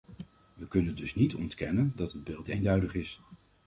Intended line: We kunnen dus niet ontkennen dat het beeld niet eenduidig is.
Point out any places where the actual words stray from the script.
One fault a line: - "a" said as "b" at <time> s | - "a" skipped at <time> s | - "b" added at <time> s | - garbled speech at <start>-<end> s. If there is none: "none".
- "niet" skipped at 2.5 s